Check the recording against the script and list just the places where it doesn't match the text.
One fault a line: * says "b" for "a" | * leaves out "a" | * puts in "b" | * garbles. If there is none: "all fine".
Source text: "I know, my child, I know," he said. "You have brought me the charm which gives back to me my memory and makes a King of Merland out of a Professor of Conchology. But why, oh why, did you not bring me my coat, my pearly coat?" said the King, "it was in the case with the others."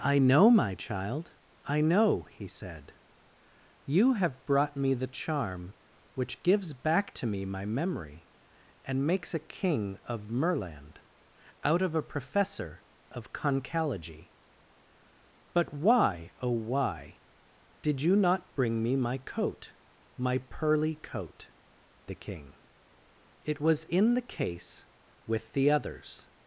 * leaves out "said"